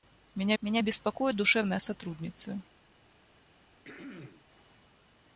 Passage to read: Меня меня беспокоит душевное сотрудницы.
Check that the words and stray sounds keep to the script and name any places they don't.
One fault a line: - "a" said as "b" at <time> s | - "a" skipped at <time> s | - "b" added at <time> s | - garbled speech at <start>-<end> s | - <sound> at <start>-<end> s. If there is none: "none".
- throat clearing at 3.8-4.5 s